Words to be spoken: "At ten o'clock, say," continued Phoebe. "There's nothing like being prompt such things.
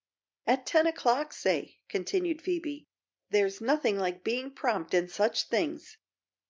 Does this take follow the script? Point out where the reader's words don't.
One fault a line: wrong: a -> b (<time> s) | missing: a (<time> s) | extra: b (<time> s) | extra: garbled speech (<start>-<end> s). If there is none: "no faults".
extra: in (4.9 s)